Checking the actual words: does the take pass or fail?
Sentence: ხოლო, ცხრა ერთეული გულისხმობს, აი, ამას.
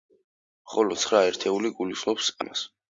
fail